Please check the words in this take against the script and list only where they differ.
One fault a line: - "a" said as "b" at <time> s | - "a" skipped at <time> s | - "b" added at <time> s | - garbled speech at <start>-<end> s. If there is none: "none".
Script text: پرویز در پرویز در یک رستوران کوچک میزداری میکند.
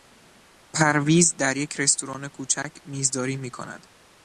- "پرویز در" skipped at 1.6 s